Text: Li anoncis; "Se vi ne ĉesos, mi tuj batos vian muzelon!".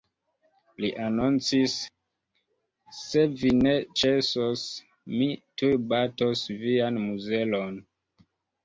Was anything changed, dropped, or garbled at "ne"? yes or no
no